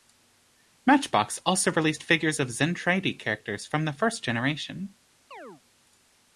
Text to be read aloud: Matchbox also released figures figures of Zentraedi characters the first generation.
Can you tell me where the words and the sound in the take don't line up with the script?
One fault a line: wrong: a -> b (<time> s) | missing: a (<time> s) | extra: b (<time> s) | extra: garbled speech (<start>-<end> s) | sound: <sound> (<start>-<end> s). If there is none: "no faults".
missing: figures (2.4 s)
extra: from (3.7 s)
sound: chirp (5.3-5.6 s)